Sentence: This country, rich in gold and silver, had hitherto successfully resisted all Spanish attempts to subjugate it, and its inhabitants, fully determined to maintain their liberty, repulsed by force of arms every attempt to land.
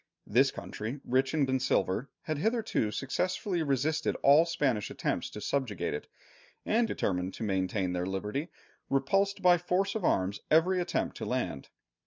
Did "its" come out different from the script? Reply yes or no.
yes